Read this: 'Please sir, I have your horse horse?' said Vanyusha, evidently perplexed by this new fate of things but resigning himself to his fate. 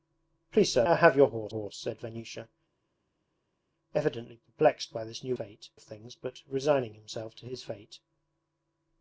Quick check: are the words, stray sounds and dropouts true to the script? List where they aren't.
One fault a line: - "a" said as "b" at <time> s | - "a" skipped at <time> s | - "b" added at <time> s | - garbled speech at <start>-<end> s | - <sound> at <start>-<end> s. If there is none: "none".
none